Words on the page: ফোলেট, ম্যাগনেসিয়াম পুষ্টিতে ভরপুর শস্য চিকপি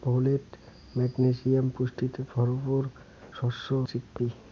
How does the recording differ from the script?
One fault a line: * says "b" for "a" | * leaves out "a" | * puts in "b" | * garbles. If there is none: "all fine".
all fine